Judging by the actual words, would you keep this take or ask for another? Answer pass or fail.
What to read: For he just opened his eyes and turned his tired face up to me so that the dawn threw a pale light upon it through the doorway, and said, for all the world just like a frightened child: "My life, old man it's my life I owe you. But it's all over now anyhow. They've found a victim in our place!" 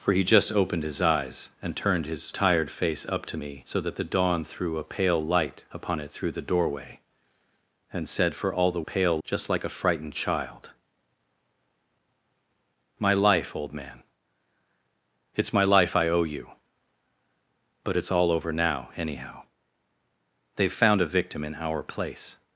fail